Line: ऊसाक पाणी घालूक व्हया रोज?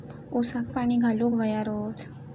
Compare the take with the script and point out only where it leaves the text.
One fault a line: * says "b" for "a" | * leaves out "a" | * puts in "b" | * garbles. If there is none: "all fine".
all fine